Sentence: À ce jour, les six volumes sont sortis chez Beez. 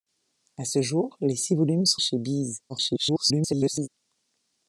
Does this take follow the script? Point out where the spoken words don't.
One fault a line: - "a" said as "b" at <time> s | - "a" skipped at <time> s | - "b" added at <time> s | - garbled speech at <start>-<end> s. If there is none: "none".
- "sortis" skipped at 2.0 s
- garbled speech at 2.7-3.9 s